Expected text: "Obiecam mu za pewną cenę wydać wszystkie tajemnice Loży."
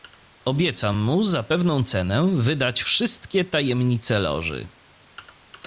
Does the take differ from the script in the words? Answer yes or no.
no